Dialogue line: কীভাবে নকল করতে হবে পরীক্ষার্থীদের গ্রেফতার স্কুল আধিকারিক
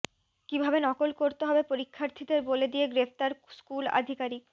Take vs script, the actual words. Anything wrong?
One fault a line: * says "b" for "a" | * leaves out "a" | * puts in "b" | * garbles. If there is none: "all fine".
* puts in "বলে দিয়ে"